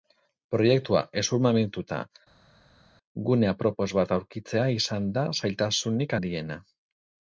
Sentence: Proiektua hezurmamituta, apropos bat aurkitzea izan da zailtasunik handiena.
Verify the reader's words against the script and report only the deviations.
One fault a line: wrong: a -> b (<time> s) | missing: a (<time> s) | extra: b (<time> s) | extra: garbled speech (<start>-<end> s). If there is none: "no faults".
extra: gune (3.3 s)